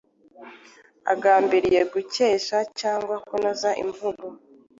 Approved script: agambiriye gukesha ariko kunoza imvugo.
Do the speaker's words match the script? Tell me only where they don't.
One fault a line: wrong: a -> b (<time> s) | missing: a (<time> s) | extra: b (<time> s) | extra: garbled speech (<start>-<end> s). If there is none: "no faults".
wrong: ariko -> cyangwa (2.8 s)